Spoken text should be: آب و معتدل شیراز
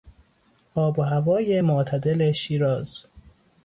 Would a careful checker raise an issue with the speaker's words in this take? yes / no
yes